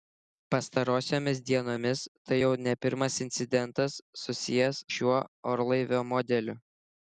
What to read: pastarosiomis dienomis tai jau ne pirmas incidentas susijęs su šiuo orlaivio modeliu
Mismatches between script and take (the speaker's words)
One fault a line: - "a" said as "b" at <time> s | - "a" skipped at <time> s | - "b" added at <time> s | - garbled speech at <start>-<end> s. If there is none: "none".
- "su" skipped at 4.8 s